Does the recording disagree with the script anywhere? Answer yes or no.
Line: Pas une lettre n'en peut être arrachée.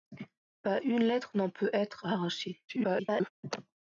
yes